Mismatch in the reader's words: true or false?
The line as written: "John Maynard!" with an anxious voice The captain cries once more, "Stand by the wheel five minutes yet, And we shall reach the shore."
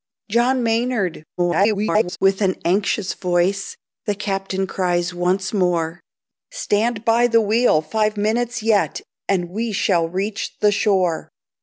true